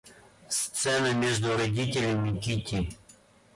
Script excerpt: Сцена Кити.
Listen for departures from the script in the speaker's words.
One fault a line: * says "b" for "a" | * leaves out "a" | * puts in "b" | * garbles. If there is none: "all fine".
* puts in "между родителями"